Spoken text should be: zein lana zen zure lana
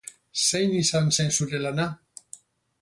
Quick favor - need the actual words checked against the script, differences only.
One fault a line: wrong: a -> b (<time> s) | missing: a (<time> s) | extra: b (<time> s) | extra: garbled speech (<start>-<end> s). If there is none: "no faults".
wrong: lana -> izan (0.8 s)